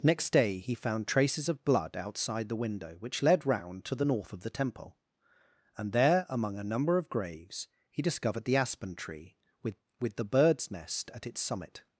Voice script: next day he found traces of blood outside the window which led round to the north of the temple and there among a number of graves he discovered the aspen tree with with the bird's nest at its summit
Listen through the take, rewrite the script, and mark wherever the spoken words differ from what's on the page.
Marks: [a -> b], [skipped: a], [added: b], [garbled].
next day he found traces of blood outside the window which led round to the north of the temple and there among a number of graves he discovered the aspen tree with with the bird's nest at its summit